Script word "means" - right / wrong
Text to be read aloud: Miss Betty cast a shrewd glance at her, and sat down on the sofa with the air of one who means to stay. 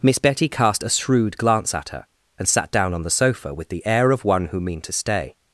wrong